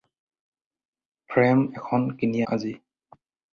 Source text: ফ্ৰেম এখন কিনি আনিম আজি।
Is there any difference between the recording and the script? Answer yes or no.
yes